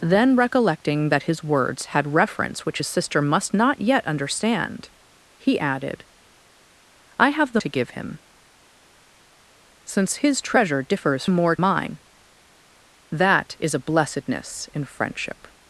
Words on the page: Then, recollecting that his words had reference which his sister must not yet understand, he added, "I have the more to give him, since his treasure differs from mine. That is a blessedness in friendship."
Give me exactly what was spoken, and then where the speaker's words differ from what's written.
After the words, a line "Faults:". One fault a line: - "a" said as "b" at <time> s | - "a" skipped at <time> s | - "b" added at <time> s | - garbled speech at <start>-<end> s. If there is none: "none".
Then, recollecting that his words had reference which his sister must not yet understand, he added, "I have the to give him, since his treasure differs more mine. That is a blessedness in friendship."
Faults:
- "more" skipped at 7.6 s
- "from" said as "more" at 11.3 s